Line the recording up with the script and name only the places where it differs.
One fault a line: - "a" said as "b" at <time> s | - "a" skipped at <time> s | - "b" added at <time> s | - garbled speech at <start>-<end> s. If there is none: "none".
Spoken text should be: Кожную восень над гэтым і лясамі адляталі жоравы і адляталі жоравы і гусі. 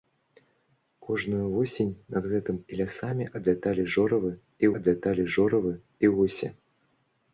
none